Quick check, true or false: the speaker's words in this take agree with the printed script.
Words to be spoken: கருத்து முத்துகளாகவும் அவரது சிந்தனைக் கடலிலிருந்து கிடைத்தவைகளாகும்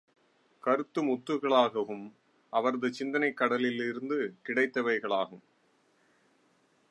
true